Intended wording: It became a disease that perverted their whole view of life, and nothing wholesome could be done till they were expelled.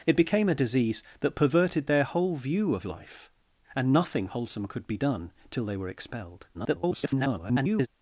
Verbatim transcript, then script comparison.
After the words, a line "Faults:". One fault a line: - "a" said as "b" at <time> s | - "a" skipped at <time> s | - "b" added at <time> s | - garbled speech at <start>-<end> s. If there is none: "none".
It became a disease that perverted their whole view of life, and nothing wholesome could be done till they were expelled. [garbled]
Faults:
- garbled speech at 6.5-7.9 s